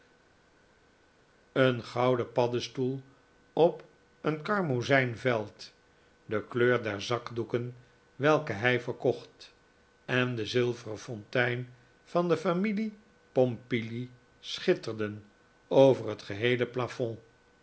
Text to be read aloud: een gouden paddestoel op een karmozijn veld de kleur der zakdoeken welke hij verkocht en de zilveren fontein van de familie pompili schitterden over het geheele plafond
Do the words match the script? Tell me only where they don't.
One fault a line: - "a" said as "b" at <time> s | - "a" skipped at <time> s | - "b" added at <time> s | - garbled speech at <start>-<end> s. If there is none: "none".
none